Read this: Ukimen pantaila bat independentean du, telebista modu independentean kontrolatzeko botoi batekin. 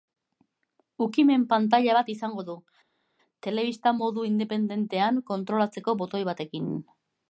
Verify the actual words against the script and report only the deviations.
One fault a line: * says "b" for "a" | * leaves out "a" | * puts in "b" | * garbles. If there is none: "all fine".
* says "izango" for "independentean"